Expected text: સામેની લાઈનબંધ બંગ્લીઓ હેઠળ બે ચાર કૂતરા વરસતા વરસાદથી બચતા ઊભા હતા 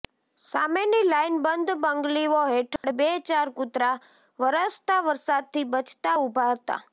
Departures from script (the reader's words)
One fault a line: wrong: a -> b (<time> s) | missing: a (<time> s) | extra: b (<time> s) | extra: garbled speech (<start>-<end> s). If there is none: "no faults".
no faults